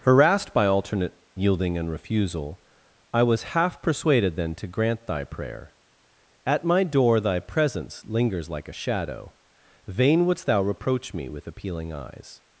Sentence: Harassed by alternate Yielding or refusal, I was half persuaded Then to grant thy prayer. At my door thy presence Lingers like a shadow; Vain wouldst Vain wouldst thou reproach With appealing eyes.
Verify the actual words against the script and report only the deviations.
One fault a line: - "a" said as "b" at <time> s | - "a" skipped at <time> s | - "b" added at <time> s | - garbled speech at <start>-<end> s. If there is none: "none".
- "or" said as "and" at 1.8 s
- "Vain wouldst" skipped at 10.5 s
- "me" added at 11.1 s